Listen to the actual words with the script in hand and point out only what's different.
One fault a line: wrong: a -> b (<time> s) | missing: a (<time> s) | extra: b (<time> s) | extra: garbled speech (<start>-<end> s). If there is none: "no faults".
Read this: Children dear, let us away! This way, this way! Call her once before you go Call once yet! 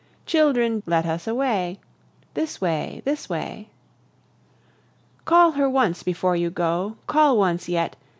missing: dear (0.8 s)